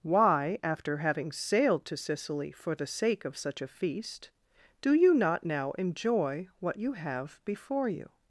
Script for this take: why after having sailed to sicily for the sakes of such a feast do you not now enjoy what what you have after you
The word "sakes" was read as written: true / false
false